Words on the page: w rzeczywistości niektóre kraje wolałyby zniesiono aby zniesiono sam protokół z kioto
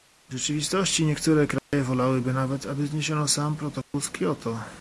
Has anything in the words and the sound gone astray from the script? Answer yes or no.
yes